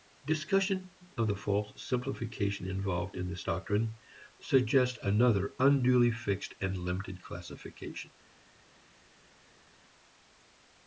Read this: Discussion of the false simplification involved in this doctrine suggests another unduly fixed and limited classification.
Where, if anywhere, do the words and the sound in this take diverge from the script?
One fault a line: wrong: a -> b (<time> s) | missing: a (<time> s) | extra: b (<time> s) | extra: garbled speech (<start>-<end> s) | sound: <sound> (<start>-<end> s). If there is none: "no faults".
no faults